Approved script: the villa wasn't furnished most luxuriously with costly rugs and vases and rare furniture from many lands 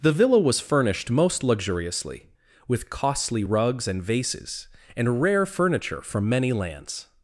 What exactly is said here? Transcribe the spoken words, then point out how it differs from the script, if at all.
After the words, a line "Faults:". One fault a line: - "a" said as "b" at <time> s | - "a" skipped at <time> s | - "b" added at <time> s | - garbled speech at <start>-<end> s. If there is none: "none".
the villa was furnished most luxuriously with costly rugs and vases and rare furniture from many lands
Faults:
- "wasn't" said as "was" at 0.4 s